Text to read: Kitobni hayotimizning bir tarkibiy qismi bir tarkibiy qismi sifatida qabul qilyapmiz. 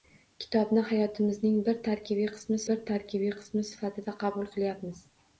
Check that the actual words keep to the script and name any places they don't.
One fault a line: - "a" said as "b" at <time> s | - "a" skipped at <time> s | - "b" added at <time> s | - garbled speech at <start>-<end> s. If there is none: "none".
none